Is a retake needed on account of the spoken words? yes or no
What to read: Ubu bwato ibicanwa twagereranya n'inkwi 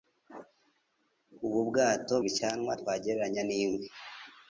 no